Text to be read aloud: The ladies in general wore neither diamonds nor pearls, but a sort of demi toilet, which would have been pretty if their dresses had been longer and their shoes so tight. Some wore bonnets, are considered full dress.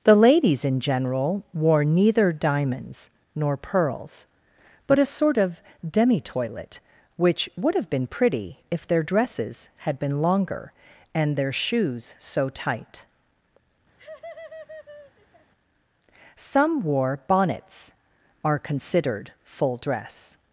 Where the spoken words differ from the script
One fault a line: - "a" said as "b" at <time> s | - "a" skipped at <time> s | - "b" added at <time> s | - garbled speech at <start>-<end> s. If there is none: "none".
none